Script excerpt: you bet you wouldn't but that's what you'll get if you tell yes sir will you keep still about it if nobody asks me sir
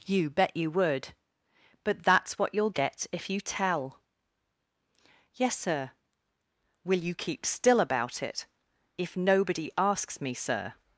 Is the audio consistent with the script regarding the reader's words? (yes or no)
no